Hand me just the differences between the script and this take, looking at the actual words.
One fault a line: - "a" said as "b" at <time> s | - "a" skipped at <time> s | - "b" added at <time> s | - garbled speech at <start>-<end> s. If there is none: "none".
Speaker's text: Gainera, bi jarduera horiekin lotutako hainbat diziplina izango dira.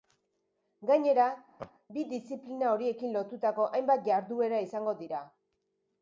- "jarduera" said as "diziplina" at 2.1 s
- "diziplina" said as "jarduera" at 4.1 s